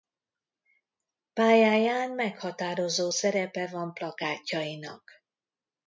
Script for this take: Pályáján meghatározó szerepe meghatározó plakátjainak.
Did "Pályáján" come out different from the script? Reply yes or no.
no